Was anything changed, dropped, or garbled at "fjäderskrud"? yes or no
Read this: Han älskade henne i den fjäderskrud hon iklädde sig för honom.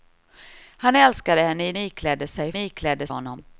yes